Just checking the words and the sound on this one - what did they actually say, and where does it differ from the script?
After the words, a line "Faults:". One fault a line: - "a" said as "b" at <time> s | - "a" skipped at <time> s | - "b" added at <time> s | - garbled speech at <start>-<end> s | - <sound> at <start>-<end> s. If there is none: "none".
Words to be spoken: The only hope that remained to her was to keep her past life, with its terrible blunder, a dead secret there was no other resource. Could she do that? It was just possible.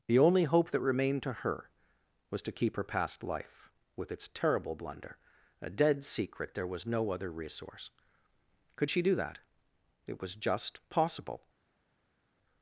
The only hope that remained to her was to keep her past life, with its terrible blunder, a dead secret there was no other resource. Could she do that? It was just possible.
Faults:
none